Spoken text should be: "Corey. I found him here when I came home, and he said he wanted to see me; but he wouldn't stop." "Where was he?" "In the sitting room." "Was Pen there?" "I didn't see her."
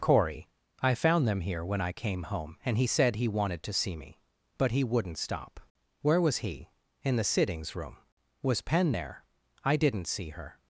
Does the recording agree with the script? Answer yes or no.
no